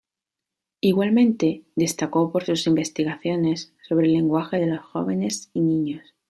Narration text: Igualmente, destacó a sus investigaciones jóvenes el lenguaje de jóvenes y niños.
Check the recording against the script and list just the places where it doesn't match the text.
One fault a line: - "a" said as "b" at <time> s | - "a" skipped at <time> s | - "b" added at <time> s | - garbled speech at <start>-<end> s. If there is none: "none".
- "a" said as "por" at 2.3 s
- "jóvenes" said as "sobre" at 3.9 s
- "los" added at 4.7 s